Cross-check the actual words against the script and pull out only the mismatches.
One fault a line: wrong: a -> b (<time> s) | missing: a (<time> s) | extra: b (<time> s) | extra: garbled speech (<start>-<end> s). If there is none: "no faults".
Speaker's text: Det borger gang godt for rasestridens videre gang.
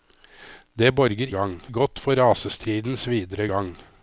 no faults